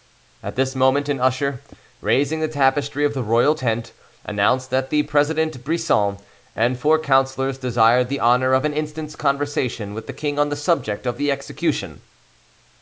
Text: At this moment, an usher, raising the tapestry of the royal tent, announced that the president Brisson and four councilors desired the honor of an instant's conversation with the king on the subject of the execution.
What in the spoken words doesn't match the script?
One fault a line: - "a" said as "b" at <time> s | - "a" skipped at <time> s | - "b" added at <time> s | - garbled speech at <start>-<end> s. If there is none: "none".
none